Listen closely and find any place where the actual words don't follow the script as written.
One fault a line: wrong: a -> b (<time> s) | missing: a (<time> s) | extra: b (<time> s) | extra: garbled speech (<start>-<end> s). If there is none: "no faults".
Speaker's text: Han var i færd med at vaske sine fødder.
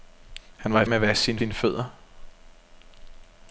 missing: færd (0.8 s)
extra: sine (1.4 s)